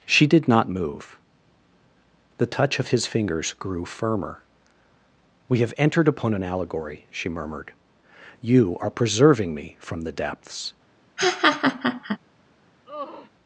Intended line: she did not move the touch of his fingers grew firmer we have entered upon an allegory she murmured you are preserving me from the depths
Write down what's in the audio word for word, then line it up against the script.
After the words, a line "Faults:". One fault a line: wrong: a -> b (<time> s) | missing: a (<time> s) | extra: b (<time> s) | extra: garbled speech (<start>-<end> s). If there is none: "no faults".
she did not move the touch of his fingers grew firmer we have entered upon an allegory she murmured you are preserving me from the depths
Faults:
no faults